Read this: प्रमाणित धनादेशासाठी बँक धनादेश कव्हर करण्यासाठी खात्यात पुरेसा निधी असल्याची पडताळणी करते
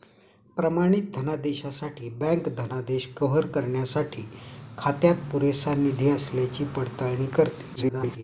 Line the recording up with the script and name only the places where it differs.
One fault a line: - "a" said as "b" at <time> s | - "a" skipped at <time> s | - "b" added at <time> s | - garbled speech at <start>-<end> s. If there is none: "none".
- garbled speech at 7.8-8.2 s